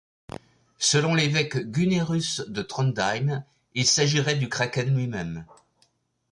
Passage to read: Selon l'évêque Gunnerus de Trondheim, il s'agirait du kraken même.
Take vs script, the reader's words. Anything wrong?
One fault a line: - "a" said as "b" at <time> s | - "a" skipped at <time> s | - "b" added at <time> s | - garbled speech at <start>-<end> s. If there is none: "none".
- "lui" added at 5.0 s